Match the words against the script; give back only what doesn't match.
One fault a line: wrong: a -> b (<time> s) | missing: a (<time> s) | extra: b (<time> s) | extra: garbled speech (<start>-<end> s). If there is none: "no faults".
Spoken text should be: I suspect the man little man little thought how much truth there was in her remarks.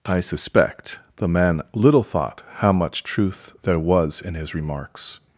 missing: man little (2.0 s)
wrong: her -> his (4.3 s)